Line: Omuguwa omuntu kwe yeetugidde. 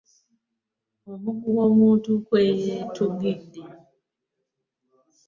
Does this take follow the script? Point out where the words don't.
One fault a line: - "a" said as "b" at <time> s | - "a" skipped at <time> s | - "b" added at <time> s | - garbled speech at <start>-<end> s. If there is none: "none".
none